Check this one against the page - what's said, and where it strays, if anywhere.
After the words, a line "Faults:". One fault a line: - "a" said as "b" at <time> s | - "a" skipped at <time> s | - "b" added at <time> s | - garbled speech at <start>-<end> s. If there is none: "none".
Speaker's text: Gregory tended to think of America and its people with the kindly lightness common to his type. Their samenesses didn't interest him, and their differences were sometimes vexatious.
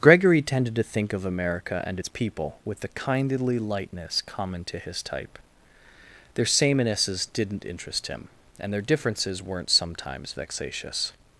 Gregory tended to think of America and its people with the kindly lightness common to his type. Their samenesses didn't interest him, and their differences weren't sometimes vexatious.
Faults:
- "were" said as "weren't" at 9.4 s